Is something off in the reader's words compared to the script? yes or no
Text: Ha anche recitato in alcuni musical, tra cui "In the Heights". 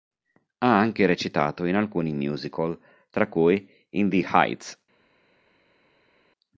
no